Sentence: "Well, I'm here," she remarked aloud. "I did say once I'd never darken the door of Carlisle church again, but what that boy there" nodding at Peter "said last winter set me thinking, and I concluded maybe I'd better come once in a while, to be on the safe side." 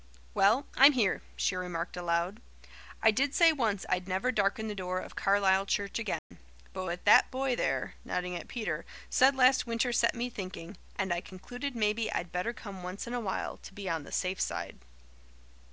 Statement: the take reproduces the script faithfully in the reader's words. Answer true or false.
true